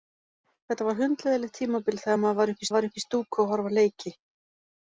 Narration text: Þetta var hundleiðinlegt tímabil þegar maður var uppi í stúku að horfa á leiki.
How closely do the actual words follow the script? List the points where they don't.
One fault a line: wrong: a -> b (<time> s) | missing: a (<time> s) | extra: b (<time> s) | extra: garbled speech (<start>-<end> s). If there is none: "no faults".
extra: var uppi (2.7 s)